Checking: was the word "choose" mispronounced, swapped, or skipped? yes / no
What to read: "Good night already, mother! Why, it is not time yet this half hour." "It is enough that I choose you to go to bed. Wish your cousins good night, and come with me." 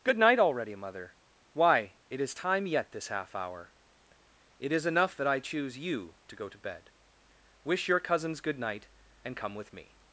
no